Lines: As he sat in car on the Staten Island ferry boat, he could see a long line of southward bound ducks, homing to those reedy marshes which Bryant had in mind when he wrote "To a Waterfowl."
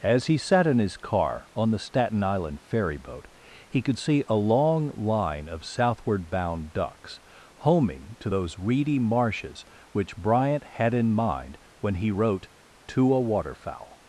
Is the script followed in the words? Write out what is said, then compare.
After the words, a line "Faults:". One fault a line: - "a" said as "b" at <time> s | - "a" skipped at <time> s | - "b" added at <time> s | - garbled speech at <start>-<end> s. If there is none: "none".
As he sat in his car on the Staten Island ferry boat, he could see a long line of southward bound ducks, homing to those reedy marshes which Bryant had in mind when he wrote "To a Waterfowl."
Faults:
- "his" added at 0.8 s